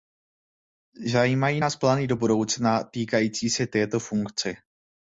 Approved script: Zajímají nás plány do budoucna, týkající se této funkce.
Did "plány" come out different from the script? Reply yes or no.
no